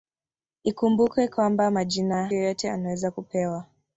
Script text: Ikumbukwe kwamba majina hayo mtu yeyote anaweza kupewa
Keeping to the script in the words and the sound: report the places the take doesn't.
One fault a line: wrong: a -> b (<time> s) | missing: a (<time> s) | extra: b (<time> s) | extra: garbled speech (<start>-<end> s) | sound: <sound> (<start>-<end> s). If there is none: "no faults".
missing: hayo mtu (2.3 s)